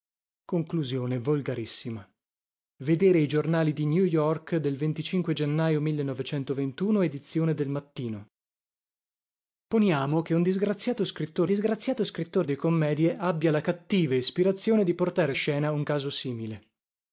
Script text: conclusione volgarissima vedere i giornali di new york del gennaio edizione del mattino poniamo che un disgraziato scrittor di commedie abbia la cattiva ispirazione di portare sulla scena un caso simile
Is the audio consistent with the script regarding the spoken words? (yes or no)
no